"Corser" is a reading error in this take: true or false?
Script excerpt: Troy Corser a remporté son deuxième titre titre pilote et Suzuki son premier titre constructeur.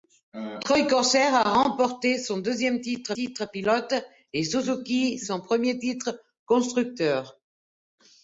false